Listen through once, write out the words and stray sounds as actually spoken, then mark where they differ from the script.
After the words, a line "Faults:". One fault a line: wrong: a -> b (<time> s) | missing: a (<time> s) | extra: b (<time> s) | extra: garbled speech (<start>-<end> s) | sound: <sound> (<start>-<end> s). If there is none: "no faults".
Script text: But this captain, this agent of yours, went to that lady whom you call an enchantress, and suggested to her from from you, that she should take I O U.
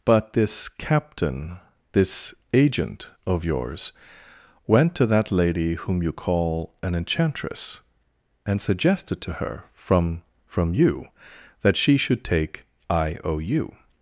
But this captain, this agent of yours, went to that lady whom you call an enchantress, and suggested to her from from you, that she should take I O U.
Faults:
no faults